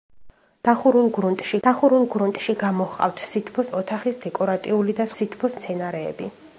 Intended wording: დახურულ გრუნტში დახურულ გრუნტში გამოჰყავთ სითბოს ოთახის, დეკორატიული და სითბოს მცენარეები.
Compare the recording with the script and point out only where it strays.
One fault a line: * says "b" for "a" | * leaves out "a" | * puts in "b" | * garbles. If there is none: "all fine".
all fine